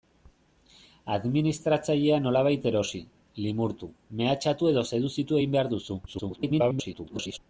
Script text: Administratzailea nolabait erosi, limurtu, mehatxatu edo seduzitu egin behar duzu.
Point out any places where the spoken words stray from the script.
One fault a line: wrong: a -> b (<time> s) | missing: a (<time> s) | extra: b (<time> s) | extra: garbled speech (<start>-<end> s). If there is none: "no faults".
extra: garbled speech (6.1-7.4 s)